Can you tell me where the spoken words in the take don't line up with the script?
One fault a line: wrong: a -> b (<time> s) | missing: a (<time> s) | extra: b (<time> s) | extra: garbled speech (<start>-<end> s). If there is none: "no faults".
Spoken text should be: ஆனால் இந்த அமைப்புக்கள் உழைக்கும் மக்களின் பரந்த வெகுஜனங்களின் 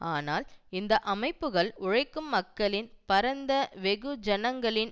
no faults